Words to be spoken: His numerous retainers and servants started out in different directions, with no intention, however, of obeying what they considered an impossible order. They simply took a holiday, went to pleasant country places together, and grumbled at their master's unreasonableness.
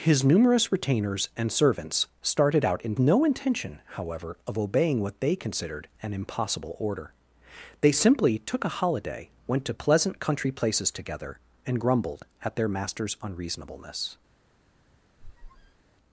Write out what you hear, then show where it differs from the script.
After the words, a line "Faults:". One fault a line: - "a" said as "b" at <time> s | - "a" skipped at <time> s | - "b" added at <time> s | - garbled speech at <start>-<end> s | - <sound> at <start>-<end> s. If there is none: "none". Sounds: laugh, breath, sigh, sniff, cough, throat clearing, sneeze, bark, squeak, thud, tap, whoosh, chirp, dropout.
His numerous retainers and servants started out in no intention, however, of obeying what they considered an impossible order. They simply took a holiday, went to pleasant country places together, and grumbled at their master's unreasonableness.
Faults:
- "different directions with" skipped at 3.0 s
- squeak at 15.2-15.8 s